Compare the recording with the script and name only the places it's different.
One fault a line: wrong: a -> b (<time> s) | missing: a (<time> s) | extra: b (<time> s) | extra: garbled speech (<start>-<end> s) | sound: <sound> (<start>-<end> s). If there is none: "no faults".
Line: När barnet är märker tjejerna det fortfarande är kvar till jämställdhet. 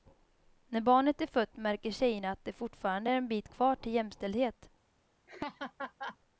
extra: fött (1.3 s)
extra: att (2.3 s)
extra: en bit (3.1 s)
sound: laugh (5.3-6.2 s)